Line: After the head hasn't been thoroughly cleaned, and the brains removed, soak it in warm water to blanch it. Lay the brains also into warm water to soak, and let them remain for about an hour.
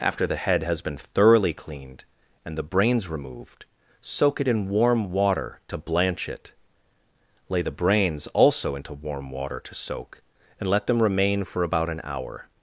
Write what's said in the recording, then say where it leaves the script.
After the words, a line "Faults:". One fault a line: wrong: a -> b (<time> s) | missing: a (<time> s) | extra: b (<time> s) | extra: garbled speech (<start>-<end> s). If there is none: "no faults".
After the head has been thoroughly cleaned, and the brains removed, soak it in warm water to blanch it. Lay the brains also into warm water to soak, and let them remain for about an hour.
Faults:
wrong: hasn't -> has (0.6 s)